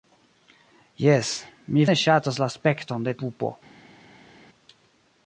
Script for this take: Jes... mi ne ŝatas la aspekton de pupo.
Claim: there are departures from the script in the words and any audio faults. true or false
false